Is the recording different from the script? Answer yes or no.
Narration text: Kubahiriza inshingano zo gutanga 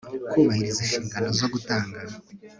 no